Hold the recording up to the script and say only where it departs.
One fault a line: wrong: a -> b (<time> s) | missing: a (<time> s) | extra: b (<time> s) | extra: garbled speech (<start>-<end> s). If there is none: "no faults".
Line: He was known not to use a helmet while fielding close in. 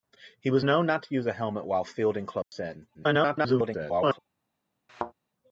extra: garbled speech (2.9-4.2 s)